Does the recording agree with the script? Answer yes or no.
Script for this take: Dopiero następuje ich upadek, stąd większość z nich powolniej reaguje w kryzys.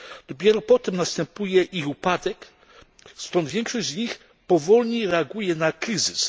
no